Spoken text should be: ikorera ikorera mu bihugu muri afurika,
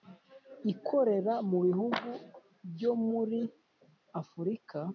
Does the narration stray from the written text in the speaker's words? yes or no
yes